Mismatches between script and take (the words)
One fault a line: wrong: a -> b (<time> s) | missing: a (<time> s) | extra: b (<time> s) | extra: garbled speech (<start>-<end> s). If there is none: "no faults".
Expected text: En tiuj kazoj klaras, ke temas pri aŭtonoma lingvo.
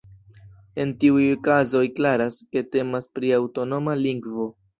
no faults